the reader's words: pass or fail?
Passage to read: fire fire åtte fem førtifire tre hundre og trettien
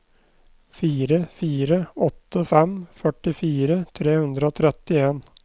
pass